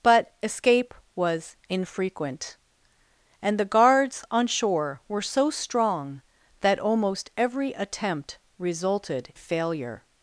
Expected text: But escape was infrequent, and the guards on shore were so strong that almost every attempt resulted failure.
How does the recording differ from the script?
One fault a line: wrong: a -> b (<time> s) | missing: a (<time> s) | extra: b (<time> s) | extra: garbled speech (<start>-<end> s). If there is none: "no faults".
no faults